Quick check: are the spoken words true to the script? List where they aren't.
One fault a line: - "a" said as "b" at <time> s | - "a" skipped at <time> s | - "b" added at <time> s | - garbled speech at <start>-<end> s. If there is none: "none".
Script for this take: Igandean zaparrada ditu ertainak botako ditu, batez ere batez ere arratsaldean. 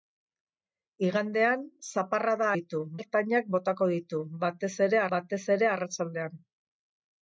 none